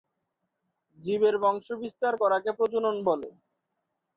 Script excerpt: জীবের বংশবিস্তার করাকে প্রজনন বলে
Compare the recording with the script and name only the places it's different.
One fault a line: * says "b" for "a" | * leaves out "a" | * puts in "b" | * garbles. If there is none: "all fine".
all fine